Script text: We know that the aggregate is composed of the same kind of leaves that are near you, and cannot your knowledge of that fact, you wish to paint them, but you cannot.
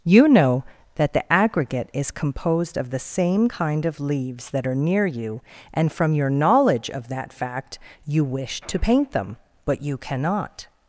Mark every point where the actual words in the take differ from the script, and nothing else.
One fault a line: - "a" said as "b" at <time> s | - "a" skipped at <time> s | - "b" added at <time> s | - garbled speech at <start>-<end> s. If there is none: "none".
- "We" said as "You" at 0.0 s
- "cannot" said as "from" at 5.9 s